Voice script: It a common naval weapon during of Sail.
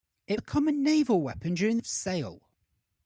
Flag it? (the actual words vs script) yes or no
no